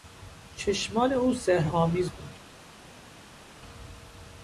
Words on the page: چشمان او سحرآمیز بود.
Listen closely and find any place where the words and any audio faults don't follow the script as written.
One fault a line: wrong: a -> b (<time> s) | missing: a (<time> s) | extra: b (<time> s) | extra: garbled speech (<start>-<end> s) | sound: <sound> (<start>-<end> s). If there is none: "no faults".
no faults